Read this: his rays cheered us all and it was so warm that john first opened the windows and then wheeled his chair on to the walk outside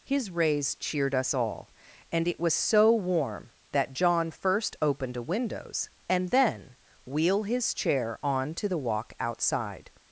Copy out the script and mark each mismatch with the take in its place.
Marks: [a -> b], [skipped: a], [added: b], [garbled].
his rays cheered us all and it was so warm that john first opened [the -> a] windows and then [wheeled -> wheel] his chair on to the walk outside